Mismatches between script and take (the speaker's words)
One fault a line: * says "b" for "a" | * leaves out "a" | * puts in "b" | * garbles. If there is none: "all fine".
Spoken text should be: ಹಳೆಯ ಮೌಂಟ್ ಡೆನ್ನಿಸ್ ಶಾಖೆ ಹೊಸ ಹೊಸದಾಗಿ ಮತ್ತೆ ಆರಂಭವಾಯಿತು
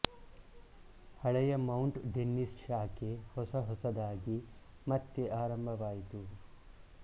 all fine